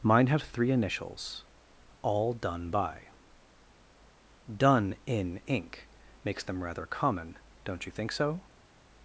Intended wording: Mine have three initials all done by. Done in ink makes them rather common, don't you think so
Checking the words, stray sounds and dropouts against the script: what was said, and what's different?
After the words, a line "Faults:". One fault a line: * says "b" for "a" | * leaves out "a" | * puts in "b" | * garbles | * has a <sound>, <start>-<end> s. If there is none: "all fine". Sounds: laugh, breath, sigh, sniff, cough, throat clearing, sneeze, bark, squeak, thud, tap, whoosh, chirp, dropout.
Mine have three initials all done by. Done in ink makes them rather common, don't you think so
Faults:
all fine